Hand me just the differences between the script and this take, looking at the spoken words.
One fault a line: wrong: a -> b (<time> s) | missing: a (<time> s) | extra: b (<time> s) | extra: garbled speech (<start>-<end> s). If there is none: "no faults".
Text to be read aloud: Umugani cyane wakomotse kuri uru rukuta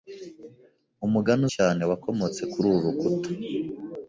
no faults